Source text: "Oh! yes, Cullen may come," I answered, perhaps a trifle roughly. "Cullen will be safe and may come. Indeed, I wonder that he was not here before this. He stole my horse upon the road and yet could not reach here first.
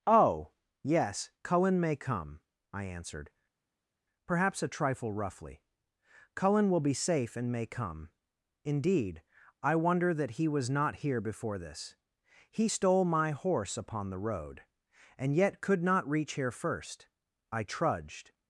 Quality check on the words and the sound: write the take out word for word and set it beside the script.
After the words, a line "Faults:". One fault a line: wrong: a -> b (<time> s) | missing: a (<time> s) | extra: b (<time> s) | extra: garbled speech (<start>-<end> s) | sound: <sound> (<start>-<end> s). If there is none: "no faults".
"Oh! yes, Cullen may come," I answered, perhaps a trifle roughly. "Cullen will be safe and may come. Indeed, I wonder that he was not here before this. He stole my horse upon the road and yet could not reach here first. I trudged
Faults:
extra: I trudged (17.5 s)